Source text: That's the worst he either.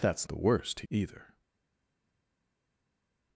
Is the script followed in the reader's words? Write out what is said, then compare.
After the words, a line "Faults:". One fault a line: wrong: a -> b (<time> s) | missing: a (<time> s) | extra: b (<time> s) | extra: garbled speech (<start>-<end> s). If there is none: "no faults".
That's the worst he either.
Faults:
no faults